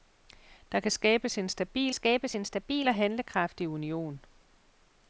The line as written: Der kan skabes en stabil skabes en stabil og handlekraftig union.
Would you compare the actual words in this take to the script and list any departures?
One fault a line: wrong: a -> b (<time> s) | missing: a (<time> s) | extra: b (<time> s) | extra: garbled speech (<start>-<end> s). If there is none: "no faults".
no faults